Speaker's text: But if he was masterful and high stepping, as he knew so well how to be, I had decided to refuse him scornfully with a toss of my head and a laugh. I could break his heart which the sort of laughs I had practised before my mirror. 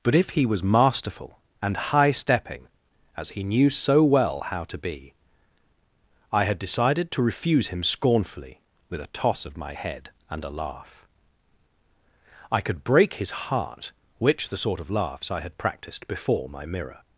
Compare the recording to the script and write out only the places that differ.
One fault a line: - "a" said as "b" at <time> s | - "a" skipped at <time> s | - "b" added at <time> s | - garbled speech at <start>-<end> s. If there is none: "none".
none